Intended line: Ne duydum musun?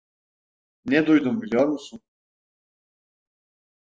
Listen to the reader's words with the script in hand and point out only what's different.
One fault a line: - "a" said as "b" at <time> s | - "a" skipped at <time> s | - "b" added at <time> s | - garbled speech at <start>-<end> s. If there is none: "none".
- "biliyor" added at 1.4 s